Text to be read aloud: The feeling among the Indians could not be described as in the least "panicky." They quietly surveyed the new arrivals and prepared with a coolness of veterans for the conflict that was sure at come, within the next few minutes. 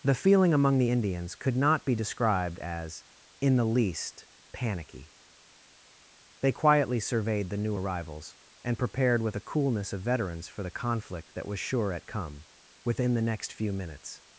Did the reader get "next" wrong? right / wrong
right